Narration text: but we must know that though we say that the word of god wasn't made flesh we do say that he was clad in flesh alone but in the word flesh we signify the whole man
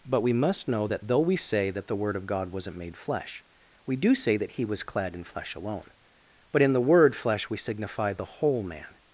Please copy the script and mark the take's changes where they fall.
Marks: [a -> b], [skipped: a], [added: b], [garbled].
but we must know that though we say that the word of god wasn't made flesh we do say that he was clad in flesh alone but in the word flesh we signify the whole man